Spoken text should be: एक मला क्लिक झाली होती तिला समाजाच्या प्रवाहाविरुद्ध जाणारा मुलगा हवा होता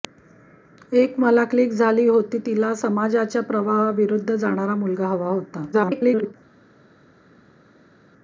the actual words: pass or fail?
fail